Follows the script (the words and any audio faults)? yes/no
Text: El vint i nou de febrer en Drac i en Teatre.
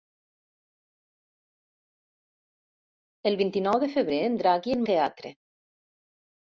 yes